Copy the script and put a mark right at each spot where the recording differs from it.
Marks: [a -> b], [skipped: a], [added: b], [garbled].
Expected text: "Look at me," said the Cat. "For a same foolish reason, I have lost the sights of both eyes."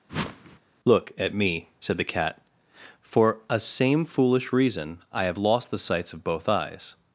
"Look at me," said the Cat. "For a same foolish reason, I have lost the sights of both eyes."